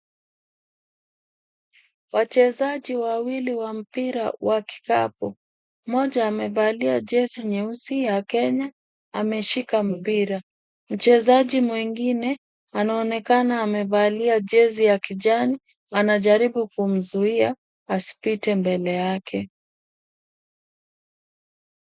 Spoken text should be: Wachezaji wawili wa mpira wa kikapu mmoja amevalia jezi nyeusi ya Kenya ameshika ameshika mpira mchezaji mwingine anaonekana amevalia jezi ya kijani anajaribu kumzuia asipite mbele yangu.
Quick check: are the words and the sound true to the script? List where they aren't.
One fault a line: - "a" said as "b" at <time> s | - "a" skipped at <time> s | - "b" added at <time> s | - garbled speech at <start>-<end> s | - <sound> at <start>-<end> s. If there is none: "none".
- "ameshika" skipped at 9.8 s
- "yangu" said as "yake" at 18.9 s